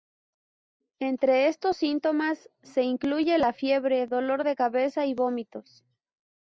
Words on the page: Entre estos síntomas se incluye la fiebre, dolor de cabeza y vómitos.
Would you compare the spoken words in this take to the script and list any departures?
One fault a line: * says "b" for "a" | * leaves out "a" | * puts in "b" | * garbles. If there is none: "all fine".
all fine